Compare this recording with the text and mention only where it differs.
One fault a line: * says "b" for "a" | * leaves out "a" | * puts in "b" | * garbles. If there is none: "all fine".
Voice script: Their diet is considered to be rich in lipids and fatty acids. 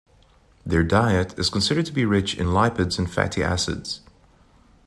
all fine